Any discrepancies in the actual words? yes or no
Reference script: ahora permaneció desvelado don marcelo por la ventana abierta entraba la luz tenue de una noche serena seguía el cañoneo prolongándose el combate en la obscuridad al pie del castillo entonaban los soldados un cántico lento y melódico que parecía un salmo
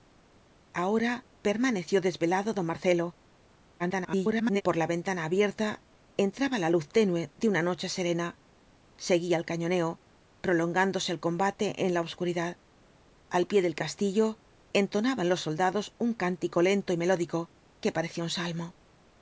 yes